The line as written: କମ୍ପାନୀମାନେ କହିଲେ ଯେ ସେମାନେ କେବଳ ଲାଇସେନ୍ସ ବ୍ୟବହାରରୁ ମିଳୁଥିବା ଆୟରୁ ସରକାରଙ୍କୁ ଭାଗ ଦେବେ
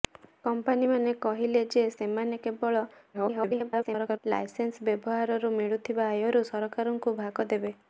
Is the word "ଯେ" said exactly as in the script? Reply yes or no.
yes